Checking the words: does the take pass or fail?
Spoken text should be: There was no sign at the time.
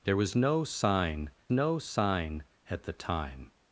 fail